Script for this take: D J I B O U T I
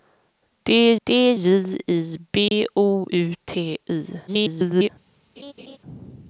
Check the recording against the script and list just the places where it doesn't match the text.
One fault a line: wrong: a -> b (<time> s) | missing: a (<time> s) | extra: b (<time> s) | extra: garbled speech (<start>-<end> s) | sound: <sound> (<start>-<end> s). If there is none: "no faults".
extra: d (1.1 s)
sound: dropout (2.5-2.5 s)
extra: garbled speech (4.3-4.9 s)
sound: laugh (5.4-5.8 s)